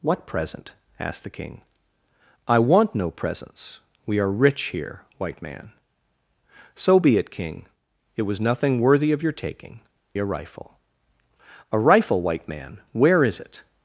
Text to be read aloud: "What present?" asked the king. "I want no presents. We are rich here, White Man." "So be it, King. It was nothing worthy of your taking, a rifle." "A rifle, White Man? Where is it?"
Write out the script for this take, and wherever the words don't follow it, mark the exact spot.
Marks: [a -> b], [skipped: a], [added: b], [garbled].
"What present?" asked the king. "I want no presents. We are rich here, White Man." "So be it, King. It was nothing worthy of your taking, a rifle." "A rifle, White Man? Where is it?"